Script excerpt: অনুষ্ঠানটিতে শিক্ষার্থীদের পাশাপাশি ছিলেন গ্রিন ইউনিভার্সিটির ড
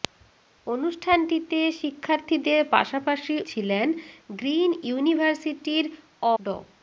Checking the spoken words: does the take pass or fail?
pass